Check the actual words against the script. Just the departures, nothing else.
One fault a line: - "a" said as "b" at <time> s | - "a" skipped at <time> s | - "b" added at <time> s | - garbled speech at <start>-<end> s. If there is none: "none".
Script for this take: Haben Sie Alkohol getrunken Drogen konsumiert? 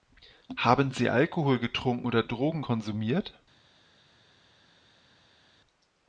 - "oder" added at 2.0 s